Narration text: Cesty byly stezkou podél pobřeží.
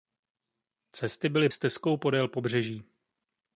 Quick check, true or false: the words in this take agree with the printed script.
true